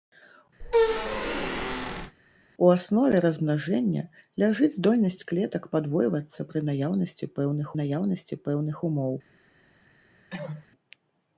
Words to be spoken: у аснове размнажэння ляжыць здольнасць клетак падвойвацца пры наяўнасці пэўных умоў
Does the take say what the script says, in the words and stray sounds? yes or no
no